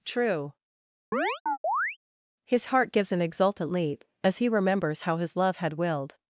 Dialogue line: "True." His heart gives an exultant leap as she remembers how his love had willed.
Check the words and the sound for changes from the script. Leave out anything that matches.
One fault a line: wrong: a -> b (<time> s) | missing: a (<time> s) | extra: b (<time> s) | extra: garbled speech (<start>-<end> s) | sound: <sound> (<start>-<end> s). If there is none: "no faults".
sound: chirp (1.1-2.0 s)
wrong: she -> he (4.4 s)